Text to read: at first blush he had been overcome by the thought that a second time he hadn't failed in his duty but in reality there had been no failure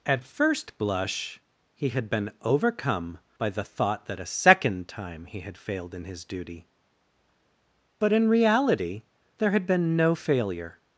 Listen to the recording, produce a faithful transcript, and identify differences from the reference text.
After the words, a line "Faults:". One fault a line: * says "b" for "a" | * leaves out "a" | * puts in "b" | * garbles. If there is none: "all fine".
at first blush he had been overcome by the thought that a second time he had failed in his duty but in reality there had been no failure
Faults:
* says "had" for "hadn't"